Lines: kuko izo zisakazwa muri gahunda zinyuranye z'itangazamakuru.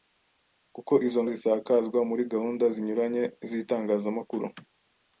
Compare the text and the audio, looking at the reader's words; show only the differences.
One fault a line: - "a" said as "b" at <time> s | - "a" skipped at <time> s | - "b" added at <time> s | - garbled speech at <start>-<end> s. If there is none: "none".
none